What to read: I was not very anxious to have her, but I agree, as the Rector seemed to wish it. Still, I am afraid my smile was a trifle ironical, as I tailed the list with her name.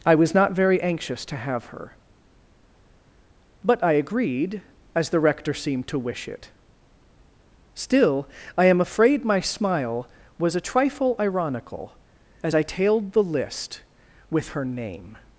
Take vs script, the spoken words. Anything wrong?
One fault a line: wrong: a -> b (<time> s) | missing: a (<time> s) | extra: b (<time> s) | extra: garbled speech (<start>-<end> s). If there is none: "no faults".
wrong: agree -> agreed (3.9 s)